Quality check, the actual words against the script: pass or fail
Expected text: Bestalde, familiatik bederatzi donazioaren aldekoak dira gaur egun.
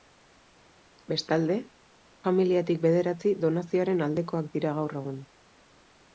pass